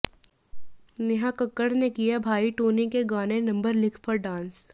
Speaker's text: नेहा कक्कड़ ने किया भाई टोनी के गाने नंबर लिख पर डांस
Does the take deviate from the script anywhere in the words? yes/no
no